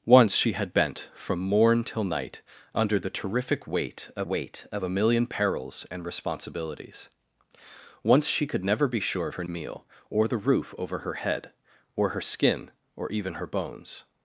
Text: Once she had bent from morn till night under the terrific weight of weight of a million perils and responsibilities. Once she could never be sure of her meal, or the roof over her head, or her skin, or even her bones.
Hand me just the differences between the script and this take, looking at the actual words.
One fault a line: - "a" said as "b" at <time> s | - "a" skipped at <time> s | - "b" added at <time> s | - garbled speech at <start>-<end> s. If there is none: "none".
none